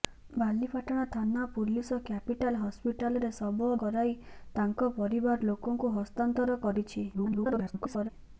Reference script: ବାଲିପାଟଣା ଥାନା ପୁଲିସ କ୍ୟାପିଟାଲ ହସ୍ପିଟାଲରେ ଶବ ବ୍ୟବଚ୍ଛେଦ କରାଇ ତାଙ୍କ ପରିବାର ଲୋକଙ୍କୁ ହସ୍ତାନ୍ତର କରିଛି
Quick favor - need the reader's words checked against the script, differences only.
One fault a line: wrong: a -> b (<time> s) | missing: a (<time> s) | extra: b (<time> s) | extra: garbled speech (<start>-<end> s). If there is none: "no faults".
missing: ବ୍ୟବଚ୍ଛେଦ (3.7 s)
extra: garbled speech (7.1-8.1 s)